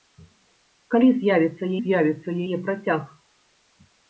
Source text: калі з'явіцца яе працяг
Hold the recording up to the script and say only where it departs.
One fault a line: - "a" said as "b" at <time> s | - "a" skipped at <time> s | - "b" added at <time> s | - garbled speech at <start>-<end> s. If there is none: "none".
- "з'явіцца" added at 1.8 s